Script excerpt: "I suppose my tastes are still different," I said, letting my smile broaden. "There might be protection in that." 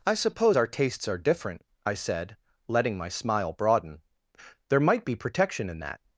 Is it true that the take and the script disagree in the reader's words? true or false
true